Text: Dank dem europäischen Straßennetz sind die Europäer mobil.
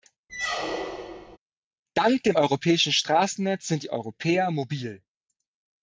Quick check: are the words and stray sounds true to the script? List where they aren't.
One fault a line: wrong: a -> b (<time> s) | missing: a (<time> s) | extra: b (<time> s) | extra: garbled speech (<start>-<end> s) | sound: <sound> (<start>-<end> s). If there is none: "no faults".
sound: squeak (0.3-1.4 s)